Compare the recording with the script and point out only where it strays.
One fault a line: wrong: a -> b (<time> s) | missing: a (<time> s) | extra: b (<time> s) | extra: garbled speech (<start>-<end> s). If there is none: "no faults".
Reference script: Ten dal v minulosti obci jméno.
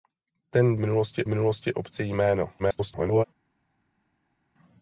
wrong: dal -> minulosti (0.8 s)
extra: garbled speech (2.6-3.2 s)